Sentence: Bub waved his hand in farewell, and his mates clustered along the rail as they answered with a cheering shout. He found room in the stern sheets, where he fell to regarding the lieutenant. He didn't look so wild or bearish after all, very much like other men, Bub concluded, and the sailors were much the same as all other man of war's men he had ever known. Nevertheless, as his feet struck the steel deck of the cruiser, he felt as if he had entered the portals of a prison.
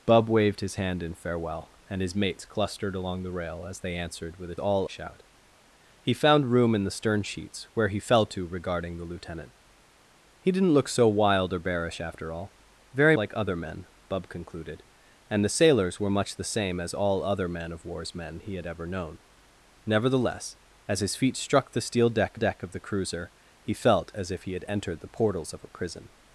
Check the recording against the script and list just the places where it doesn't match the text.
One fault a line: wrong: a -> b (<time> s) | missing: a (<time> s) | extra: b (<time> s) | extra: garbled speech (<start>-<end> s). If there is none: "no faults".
wrong: cheering -> all (4.6 s)
missing: much (13.2 s)
extra: deck (22.3 s)